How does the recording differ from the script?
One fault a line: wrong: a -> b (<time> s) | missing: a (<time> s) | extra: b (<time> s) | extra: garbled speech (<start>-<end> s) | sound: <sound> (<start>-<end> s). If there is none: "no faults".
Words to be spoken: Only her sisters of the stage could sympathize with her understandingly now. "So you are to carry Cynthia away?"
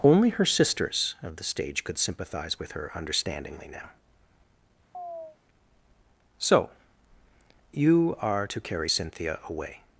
sound: chirp (4.9-5.4 s)